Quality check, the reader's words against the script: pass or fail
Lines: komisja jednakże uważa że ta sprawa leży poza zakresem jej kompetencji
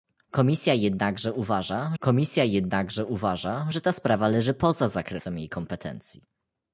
fail